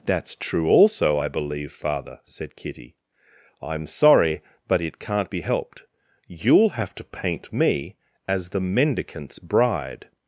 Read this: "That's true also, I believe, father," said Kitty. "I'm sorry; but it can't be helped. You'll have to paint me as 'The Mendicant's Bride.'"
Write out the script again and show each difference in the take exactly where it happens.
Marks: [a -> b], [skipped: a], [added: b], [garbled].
"That's true also, I believe, father," said Kitty. "I'm sorry; but it can't be helped. You'll have to paint me as 'The Mendicant's Bride.'"